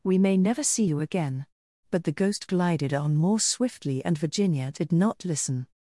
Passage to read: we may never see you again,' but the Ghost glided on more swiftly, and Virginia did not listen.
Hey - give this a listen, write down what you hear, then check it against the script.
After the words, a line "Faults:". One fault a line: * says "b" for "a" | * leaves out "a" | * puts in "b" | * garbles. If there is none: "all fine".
we may never see you again,' but the Ghost glided on more swiftly, and Virginia did not listen.
Faults:
all fine